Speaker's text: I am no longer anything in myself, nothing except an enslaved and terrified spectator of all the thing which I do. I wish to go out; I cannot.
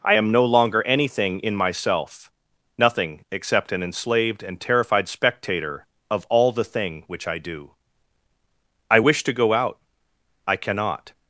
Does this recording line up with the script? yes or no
yes